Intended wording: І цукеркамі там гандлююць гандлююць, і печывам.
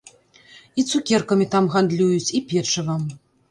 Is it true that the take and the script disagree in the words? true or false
true